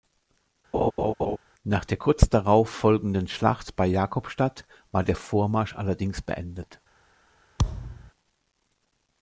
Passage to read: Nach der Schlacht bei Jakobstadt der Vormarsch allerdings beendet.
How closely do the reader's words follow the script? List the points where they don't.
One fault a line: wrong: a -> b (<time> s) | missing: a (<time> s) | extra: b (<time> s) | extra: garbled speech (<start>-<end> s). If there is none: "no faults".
extra: kurz darauf folgenden (1.9 s)
extra: war (4.9 s)